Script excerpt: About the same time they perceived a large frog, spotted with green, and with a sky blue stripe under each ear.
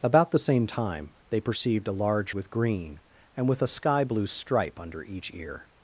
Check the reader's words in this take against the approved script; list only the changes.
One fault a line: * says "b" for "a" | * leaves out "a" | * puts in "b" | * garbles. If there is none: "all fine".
* leaves out "frog spotted"